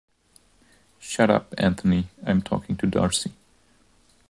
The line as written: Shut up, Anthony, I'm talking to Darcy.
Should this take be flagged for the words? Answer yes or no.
no